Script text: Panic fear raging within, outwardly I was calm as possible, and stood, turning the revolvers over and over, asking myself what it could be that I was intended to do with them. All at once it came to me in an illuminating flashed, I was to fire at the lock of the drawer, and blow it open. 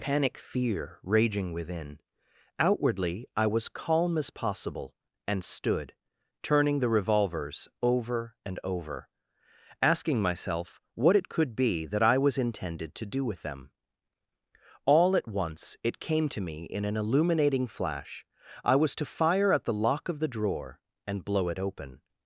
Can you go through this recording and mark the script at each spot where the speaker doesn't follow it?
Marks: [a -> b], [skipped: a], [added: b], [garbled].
Panic fear raging within, outwardly I was calm as possible, and stood, turning the revolvers over and over, asking myself what it could be that I was intended to do with them. All at once it came to me in an illuminating [flashed, -> flash] I was to fire at the lock of the drawer, and blow it open.